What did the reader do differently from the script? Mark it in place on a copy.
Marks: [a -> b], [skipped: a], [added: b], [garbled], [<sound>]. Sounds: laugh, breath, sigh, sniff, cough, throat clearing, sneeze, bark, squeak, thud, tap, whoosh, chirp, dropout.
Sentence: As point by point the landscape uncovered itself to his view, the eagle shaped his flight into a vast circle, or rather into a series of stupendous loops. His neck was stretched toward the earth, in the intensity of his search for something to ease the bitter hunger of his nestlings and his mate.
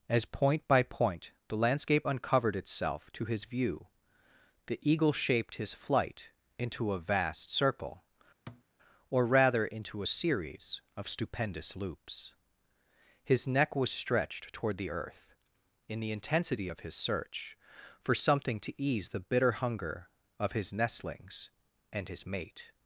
As point by point the landscape uncovered itself to his view, the eagle shaped his flight into a vast circle, [thud] or rather into a series of stupendous loops. His neck was stretched toward the earth, in the intensity of his search for something to ease the bitter hunger of his nestlings and his mate.